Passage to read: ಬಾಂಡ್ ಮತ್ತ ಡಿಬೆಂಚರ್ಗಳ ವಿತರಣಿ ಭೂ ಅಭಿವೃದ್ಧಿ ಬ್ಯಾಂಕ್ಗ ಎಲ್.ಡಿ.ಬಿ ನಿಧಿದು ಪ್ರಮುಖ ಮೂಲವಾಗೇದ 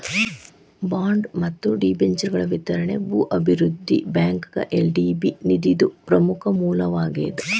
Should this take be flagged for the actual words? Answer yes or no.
no